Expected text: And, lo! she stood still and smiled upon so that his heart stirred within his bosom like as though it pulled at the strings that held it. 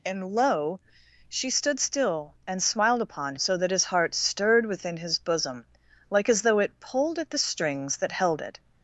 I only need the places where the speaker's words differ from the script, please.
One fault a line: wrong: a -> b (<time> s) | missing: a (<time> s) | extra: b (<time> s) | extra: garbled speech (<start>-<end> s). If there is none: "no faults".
no faults